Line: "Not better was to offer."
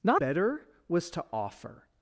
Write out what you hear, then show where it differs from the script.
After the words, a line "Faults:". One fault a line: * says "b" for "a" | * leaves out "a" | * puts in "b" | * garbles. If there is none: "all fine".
"Not better was to offer."
Faults:
all fine